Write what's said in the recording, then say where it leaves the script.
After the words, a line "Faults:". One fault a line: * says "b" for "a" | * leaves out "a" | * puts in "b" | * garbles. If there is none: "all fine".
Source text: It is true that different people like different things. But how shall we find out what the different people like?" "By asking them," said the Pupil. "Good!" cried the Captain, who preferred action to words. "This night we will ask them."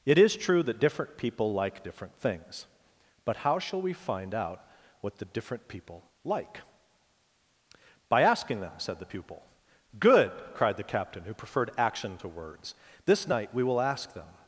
It is true that different people like different things. But how shall we find out what the different people like?" "By asking them," said the Pupil. "Good!" cried the Captain, who preferred action to words. "This night we will ask them."
Faults:
all fine